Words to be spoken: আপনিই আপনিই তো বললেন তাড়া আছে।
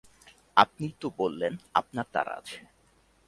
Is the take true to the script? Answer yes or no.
no